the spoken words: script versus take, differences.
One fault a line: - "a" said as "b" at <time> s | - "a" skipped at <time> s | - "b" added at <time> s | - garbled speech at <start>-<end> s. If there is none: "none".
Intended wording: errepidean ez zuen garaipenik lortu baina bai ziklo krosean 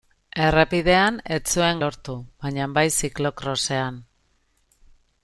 - "garaipenik" skipped at 1.8 s